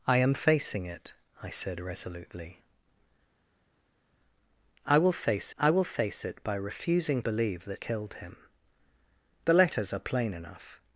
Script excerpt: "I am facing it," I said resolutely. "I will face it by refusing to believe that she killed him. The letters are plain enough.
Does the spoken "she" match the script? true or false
false